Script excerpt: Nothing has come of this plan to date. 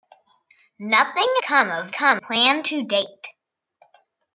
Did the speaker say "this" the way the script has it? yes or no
no